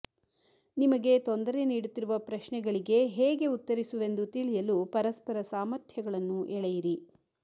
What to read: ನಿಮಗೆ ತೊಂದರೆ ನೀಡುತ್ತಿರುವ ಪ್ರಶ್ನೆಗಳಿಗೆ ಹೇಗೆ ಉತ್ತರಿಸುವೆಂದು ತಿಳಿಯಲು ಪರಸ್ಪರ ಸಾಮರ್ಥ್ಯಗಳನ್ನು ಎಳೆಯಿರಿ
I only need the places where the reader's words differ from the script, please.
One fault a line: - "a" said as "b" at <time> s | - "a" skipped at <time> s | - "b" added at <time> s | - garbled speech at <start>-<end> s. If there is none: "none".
none